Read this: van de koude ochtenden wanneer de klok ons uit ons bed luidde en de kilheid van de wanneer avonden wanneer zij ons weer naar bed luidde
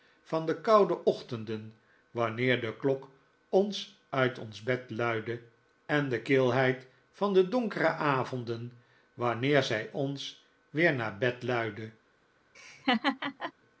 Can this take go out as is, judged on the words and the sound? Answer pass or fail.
fail